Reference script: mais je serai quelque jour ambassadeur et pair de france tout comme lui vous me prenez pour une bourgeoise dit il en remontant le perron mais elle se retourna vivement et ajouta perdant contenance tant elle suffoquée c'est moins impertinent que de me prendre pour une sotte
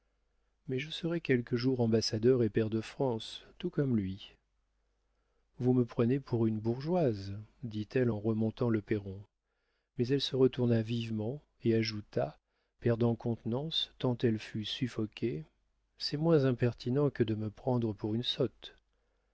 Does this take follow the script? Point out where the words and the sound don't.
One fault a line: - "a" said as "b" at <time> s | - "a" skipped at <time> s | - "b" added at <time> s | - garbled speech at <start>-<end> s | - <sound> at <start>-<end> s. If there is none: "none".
- "il" said as "elle" at 7.9 s
- "fut" added at 14.4 s